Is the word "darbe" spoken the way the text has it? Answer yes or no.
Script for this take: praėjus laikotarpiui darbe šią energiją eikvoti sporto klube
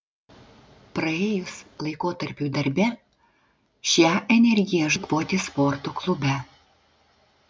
yes